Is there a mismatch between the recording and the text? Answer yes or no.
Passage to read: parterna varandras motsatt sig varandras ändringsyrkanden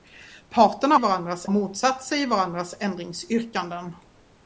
no